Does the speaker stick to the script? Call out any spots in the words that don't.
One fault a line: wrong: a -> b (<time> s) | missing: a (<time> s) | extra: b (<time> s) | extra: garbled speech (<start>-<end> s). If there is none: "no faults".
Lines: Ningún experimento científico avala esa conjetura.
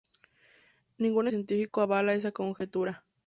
missing: experimento (1.3 s)